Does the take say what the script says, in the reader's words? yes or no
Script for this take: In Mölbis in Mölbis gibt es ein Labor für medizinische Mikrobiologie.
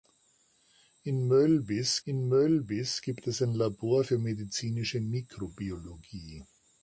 yes